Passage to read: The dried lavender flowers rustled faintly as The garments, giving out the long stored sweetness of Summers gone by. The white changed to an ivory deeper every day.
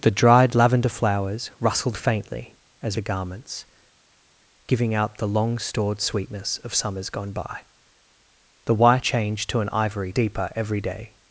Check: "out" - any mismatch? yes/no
no